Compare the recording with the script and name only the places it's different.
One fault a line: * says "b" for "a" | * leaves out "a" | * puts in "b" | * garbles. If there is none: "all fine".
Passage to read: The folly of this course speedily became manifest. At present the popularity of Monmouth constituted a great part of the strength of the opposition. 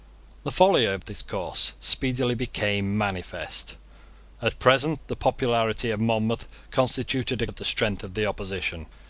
* leaves out "great part"